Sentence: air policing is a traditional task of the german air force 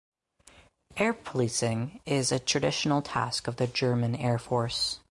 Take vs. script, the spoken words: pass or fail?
pass